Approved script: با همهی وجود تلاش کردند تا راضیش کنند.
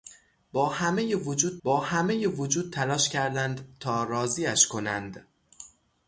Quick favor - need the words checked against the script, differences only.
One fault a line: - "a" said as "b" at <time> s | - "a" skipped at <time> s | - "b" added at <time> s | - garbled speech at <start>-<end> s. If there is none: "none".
- "با همهی وجود" added at 1.6 s